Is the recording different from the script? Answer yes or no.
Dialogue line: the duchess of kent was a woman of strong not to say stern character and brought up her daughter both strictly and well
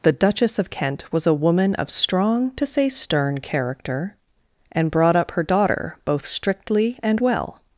yes